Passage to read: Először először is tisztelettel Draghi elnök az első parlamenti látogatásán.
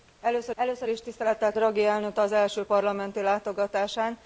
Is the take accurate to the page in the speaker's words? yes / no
yes